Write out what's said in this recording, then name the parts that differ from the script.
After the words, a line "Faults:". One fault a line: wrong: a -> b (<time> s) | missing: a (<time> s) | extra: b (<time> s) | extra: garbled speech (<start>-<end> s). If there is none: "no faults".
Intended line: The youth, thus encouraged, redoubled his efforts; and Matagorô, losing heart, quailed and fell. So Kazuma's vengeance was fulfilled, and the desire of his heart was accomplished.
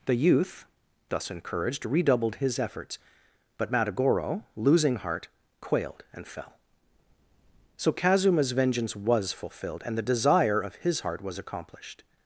The youth, thus encouraged, redoubled his efforts; but Matagorô, losing heart, quailed and fell. So Kazuma's vengeance was fulfilled, and the desire of his heart was accomplished.
Faults:
wrong: and -> but (3.6 s)